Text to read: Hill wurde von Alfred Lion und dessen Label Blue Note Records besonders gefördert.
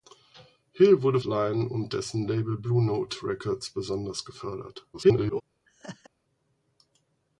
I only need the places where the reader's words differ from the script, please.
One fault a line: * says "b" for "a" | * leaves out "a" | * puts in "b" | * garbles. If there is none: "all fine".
* leaves out "von Alfred"
* garbles